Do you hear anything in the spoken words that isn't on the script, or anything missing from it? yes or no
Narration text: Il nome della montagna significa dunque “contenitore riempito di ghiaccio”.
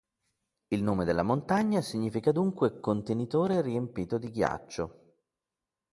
no